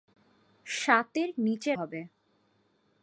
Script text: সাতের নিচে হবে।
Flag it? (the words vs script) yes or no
no